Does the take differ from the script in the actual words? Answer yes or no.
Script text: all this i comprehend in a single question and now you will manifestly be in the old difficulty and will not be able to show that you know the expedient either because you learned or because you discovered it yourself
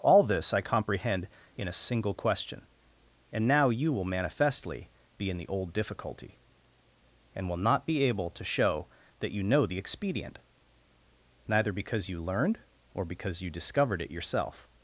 yes